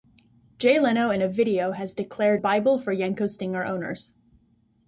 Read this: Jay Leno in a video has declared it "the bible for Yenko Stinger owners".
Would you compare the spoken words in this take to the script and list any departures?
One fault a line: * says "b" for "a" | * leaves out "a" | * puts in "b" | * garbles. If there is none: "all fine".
* leaves out "it the"